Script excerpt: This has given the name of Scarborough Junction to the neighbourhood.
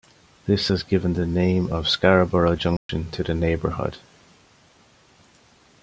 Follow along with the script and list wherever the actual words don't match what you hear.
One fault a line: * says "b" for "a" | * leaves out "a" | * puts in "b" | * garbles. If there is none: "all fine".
all fine